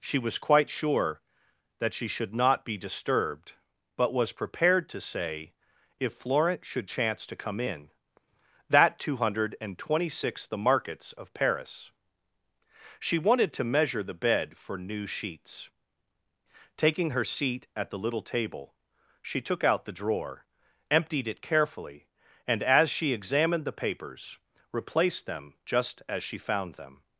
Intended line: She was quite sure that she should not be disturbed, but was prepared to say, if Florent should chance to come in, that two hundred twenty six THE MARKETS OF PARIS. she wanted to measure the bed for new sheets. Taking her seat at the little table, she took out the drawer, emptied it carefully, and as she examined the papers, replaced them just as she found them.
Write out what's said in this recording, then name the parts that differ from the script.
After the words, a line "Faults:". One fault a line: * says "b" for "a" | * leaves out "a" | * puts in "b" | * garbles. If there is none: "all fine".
She was quite sure that she should not be disturbed, but was prepared to say, if Florent should chance to come in, that two hundred twenty six THE MARKETS OF PARIS. she wanted to measure the bed for new sheets. Taking her seat at the little table, she took out the drawer, emptied it carefully, and as she examined the papers, replaced them just as she found them.
Faults:
all fine